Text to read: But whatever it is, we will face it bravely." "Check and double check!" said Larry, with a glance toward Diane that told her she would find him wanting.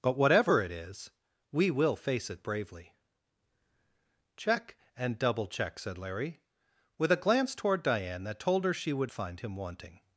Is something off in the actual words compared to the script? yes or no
no